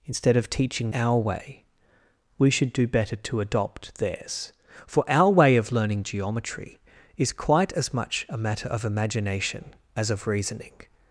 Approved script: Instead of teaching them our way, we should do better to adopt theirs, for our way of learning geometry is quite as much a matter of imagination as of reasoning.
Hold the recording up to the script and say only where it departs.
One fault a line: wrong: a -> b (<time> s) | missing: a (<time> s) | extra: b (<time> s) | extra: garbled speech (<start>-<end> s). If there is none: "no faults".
missing: them (0.9 s)